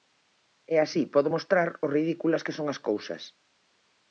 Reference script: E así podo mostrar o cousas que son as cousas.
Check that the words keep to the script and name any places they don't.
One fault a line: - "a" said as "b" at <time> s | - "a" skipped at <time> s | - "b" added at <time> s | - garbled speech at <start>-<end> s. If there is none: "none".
- "cousas" said as "ridículas" at 2.0 s